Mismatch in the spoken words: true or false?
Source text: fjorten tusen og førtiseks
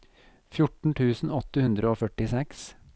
true